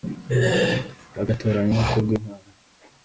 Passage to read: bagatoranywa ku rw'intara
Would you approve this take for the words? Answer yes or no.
yes